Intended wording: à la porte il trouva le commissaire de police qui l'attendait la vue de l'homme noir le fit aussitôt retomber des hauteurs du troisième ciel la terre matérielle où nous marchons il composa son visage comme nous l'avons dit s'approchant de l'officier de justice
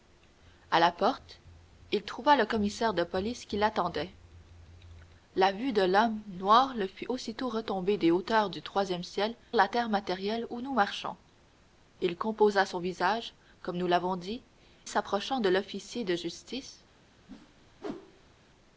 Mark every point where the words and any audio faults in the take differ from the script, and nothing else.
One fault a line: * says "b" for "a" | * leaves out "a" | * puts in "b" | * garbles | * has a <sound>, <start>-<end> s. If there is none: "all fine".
* has a whoosh, 17.3-18.4 s